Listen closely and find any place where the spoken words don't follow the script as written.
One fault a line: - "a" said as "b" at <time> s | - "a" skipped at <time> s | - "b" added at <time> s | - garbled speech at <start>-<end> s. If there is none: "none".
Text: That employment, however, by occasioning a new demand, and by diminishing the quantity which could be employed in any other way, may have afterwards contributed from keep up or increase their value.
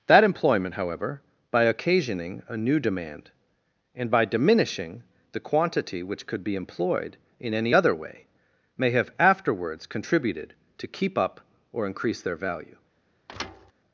- "from" said as "to" at 10.8 s